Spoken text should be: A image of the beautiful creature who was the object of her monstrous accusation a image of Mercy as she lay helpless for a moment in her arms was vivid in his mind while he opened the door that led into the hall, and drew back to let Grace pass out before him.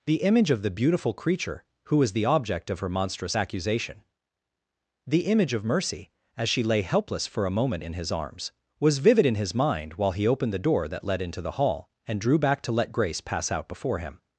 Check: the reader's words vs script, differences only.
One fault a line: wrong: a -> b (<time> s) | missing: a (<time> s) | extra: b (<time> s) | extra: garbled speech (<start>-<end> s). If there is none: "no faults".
wrong: A -> The (0.1 s)
wrong: a -> the (5.1 s)
wrong: her -> his (7.9 s)